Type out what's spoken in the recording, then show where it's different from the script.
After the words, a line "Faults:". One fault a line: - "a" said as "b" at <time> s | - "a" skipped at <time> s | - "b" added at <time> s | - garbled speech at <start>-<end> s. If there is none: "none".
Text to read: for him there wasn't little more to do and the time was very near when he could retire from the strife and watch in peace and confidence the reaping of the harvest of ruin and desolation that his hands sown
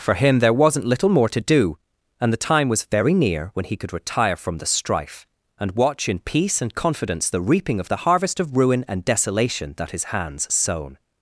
for him there wasn't little more to do and the time was very near when he could retire from the strife and watch in peace and confidence the reaping of the harvest of ruin and desolation that his hands sown
Faults:
none